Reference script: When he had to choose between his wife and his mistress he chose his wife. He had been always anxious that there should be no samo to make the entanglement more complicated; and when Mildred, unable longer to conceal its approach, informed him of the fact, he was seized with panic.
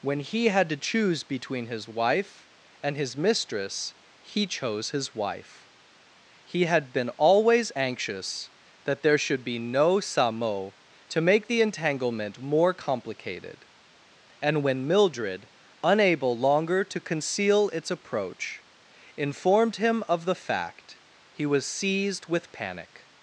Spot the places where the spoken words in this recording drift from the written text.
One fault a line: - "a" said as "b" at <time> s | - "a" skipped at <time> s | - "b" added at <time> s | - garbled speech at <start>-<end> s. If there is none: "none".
none